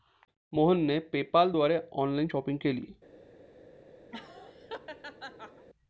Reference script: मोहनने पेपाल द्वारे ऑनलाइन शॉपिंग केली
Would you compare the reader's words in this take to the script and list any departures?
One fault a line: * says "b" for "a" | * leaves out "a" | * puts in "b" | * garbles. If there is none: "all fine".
all fine